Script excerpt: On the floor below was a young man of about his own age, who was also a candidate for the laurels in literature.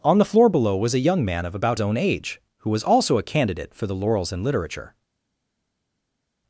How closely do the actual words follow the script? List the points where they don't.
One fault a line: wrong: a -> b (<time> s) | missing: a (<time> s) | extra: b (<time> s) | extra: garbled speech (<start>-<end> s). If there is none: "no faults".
missing: his (1.8 s)